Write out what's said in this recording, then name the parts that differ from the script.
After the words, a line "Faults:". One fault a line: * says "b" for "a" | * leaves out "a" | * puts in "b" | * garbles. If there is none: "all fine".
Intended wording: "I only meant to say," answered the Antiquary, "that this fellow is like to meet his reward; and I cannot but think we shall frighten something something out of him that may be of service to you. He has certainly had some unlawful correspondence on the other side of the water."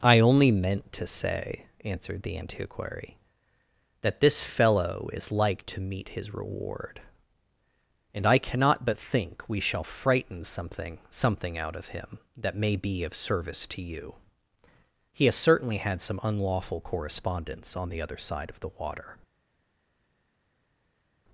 "I only meant to say," answered the Antiquary, "that this fellow is like to meet his reward; and I cannot but think we shall frighten something something out of him that may be of service to you. He has certainly had some unlawful correspondence on the other side of the water."
Faults:
all fine